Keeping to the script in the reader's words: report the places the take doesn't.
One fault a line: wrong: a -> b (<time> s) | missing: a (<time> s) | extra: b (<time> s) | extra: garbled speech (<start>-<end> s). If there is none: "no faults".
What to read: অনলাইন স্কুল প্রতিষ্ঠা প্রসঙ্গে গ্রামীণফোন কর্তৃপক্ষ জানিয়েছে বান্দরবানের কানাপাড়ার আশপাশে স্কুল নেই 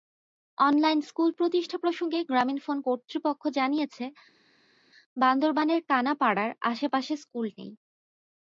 no faults